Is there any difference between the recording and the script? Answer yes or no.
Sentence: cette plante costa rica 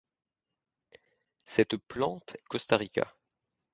no